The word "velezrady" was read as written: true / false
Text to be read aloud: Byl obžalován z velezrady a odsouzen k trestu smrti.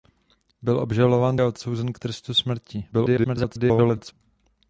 false